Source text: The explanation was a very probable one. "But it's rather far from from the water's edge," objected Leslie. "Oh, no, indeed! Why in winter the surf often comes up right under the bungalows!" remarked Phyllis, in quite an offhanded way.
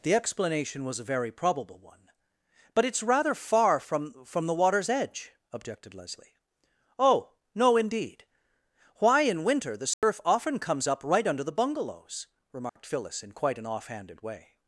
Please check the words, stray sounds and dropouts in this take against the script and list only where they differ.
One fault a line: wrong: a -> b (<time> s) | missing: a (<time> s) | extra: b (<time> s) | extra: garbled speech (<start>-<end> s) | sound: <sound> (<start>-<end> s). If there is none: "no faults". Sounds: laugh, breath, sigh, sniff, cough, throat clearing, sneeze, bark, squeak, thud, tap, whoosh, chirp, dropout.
sound: dropout (9.9-10.0 s)
sound: dropout (12.7-12.8 s)